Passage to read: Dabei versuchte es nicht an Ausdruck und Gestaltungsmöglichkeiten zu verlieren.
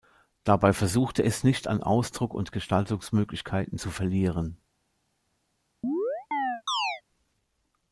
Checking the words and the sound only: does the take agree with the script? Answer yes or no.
no